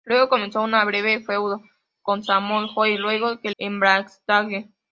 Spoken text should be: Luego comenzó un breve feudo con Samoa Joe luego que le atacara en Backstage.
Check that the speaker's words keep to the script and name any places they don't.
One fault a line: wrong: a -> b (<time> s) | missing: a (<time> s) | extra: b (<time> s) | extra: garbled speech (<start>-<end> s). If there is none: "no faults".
missing: le atacara (3.5 s)